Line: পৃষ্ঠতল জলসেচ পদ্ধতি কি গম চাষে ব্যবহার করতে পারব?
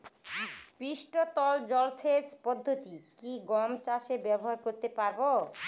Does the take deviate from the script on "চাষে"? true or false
false